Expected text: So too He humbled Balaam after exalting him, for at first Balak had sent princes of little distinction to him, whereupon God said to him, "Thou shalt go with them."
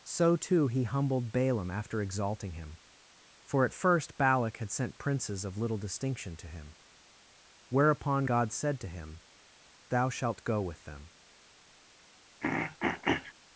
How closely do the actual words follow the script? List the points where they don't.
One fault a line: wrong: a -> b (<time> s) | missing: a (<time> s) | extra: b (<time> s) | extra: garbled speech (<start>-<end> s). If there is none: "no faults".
no faults